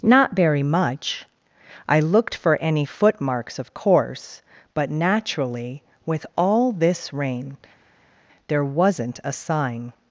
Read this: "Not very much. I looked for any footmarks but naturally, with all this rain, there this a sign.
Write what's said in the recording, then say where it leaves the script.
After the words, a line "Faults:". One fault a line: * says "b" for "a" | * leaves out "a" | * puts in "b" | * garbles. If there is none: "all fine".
"Not very much. I looked for any footmarks of course, but naturally, with all this rain, there wasn't a sign.
Faults:
* puts in "of course"
* says "wasn't" for "this"